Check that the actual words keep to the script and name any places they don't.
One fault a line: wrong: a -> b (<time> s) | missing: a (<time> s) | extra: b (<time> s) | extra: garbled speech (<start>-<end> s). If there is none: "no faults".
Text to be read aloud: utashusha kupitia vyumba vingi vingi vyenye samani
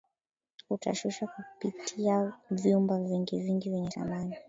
no faults